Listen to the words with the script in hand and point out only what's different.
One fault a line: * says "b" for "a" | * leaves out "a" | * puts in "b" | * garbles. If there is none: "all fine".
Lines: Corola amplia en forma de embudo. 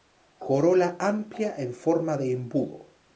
all fine